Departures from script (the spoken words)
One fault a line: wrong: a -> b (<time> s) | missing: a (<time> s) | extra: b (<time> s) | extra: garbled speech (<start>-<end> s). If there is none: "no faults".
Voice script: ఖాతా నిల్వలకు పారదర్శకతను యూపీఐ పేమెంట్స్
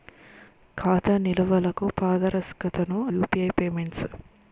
no faults